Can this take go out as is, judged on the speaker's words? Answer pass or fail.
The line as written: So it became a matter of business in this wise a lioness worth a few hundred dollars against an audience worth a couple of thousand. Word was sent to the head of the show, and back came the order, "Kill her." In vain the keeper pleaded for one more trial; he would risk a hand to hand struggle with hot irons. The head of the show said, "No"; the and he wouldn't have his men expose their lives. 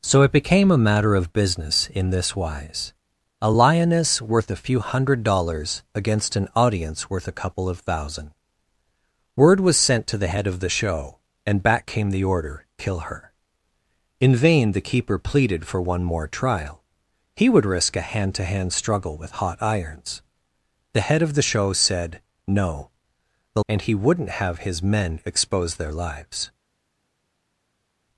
pass